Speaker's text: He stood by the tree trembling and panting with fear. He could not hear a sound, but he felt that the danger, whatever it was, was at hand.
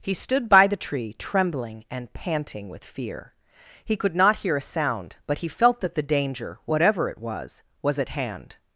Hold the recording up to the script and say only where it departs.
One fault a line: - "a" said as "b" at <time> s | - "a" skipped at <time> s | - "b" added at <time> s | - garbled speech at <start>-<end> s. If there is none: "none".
none